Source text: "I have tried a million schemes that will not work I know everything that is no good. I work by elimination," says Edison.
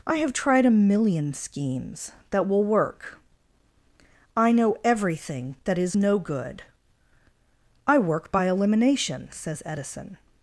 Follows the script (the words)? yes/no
no